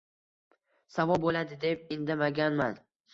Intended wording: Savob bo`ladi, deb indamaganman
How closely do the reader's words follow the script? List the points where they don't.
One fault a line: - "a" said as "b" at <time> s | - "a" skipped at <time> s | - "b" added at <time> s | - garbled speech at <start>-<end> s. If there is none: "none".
none